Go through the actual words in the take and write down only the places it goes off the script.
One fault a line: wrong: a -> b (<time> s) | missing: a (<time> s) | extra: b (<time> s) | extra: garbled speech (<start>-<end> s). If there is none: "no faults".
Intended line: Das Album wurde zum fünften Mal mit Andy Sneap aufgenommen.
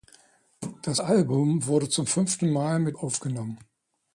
missing: Andy Sneap (3.0 s)